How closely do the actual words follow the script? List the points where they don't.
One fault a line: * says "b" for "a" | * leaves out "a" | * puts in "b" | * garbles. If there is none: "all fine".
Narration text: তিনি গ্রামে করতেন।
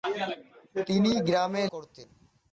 all fine